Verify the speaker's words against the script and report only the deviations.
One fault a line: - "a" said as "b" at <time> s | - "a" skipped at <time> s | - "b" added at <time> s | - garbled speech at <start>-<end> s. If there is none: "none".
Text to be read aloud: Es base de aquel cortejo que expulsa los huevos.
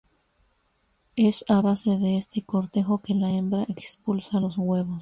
- "a" added at 1.5 s
- "aquel" said as "este" at 2.2 s
- "la hembra" added at 3.1 s